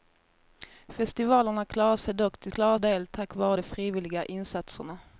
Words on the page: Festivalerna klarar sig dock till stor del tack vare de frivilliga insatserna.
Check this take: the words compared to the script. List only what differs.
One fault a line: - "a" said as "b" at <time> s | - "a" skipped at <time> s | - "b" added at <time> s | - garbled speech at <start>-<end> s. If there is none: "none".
- "stor" said as "klarar" at 2.5 s